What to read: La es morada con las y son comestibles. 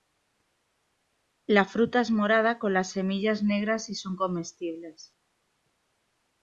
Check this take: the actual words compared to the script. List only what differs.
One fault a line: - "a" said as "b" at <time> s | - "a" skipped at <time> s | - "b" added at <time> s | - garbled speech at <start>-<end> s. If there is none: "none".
- "fruta" added at 1.6 s
- "semillas negras" added at 2.9 s